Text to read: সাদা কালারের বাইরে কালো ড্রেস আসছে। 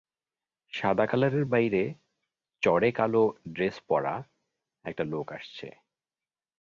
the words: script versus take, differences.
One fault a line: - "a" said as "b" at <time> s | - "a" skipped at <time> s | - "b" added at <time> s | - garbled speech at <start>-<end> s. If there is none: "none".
- "চড়ে" added at 2.6 s
- "পরা একটা লোক" added at 3.9 s